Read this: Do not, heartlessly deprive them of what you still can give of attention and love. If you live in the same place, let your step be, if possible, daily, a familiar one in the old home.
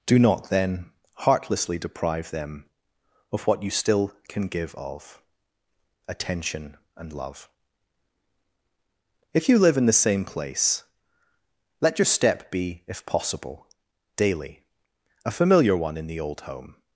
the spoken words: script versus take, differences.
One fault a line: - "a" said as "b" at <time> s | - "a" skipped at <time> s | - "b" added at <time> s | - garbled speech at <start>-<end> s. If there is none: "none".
- "then" added at 0.5 s